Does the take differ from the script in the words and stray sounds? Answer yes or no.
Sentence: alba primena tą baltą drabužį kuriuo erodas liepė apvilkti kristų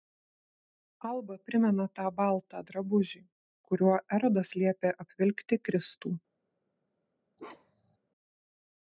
yes